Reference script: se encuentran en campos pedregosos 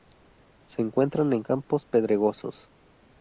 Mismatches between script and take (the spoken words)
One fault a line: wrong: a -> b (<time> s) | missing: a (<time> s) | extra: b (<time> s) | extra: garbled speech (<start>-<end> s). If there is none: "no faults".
no faults